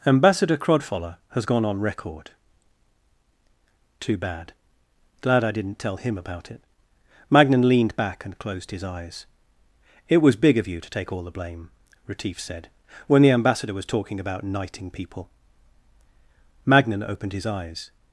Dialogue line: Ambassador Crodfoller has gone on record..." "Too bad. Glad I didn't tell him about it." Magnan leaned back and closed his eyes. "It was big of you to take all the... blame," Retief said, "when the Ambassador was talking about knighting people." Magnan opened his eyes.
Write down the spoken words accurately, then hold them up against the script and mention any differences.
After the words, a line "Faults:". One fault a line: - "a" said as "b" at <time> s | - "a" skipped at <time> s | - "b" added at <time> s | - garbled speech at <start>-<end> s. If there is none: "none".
Ambassador Crodfoller has gone on record..." "Too bad. Glad I didn't tell him about it." Magnan leaned back and closed his eyes. "It was big of you to take all the... blame," Retief said, "when the Ambassador was talking about knighting people." Magnan opened his eyes.
Faults:
none